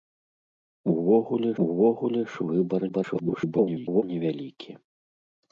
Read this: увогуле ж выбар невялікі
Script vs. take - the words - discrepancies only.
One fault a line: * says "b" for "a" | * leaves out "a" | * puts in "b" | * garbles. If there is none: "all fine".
* puts in "увогуле"
* garbles